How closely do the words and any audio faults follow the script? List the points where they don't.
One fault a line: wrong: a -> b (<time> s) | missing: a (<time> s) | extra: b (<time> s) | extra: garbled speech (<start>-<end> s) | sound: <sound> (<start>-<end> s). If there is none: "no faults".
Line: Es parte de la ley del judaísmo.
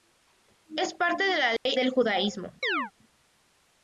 sound: dropout (1.6-1.7 s)
sound: chirp (2.6-2.9 s)